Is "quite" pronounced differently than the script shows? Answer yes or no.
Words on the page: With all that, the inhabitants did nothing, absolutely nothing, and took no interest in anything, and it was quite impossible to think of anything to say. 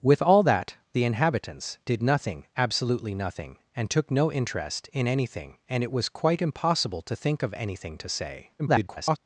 no